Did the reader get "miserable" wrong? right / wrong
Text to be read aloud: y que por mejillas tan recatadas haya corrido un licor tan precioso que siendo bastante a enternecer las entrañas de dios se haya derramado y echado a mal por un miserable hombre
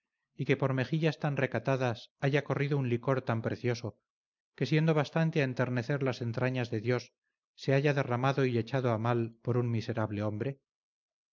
right